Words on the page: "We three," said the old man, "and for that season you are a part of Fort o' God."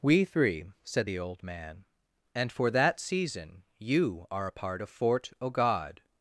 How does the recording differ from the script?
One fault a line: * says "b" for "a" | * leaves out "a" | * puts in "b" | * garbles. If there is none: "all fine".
all fine